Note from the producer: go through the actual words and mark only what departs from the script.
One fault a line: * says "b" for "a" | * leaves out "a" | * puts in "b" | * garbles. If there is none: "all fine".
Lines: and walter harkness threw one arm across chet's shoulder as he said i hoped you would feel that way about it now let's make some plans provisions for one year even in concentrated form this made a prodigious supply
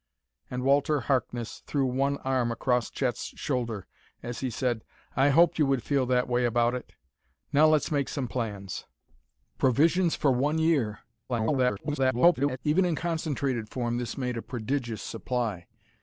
* garbles